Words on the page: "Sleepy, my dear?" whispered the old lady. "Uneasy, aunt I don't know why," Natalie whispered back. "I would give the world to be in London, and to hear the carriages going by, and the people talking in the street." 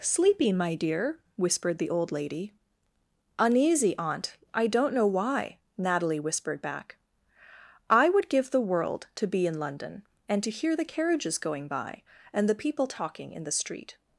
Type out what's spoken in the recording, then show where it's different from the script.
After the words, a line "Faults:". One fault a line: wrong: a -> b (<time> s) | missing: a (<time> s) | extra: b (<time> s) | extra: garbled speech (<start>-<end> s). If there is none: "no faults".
"Sleepy, my dear?" whispered the old lady. "Uneasy, aunt I don't know why," Natalie whispered back. "I would give the world to be in London, and to hear the carriages going by, and the people talking in the street."
Faults:
no faults